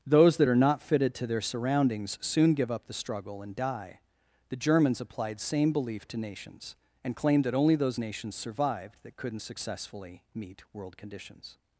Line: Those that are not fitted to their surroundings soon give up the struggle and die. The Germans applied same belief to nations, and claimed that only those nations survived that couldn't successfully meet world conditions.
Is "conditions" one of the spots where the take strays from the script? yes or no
no